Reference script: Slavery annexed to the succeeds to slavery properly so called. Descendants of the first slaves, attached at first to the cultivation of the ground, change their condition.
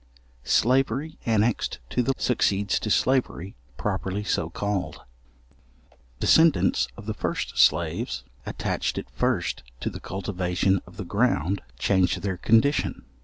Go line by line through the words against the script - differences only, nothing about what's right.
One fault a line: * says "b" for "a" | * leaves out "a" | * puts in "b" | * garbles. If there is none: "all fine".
all fine